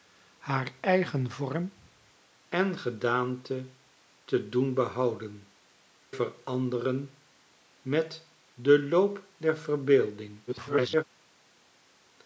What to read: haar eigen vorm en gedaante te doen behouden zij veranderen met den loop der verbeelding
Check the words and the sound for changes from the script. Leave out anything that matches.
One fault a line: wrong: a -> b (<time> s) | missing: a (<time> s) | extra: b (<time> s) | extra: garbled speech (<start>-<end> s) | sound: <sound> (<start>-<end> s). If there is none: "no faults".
missing: zij (5.5 s)
extra: garbled speech (10.5-11.0 s)